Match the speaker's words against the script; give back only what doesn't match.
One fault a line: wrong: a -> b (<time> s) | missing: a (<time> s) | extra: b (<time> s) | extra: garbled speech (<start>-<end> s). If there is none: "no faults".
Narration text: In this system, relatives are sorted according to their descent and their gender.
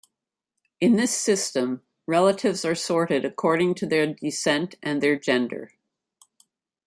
no faults